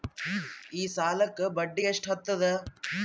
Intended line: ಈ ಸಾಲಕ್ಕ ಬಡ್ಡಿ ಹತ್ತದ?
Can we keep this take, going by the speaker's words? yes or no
no